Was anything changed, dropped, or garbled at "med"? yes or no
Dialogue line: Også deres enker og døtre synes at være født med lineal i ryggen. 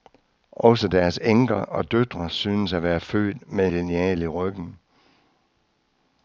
no